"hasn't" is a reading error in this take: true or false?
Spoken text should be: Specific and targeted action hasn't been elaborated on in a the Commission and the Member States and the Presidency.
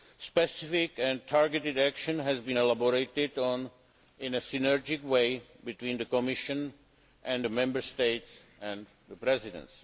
true